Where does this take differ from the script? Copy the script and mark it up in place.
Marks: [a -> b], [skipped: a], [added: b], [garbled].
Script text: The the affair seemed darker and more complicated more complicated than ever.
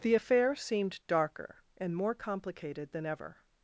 The [skipped: the] affair seemed darker and more complicated [skipped: more complicated] than ever.